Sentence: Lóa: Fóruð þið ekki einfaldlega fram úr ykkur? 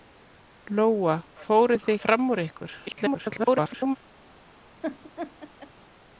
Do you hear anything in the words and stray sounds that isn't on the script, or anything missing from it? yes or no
yes